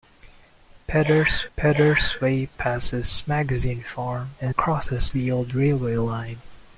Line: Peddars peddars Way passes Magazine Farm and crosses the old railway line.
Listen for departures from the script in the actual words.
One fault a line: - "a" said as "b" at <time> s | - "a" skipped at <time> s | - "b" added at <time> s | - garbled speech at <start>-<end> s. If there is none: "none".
none